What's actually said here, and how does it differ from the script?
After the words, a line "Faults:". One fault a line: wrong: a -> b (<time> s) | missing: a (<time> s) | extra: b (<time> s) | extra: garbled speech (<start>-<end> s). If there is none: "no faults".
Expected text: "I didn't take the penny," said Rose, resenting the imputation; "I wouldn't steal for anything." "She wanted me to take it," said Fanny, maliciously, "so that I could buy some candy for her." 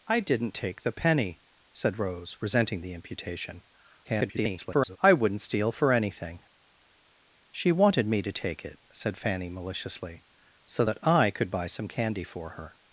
"I didn't take the penny," said Rose, resenting the imputation; [garbled] "I wouldn't steal for anything." "She wanted me to take it," said Fanny, maliciously, "so that I could buy some candy for her."
Faults:
extra: garbled speech (4.0-5.0 s)